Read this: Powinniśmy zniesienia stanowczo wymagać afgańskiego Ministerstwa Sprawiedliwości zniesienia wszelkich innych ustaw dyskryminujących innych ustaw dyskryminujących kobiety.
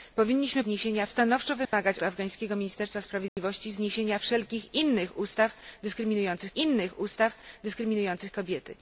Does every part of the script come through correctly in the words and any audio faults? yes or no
no